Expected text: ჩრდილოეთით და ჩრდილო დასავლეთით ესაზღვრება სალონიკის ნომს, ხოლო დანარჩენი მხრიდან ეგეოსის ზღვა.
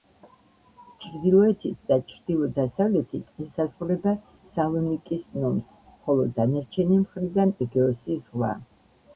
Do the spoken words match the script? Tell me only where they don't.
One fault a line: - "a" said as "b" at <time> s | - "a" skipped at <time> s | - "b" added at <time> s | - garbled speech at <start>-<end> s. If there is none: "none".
none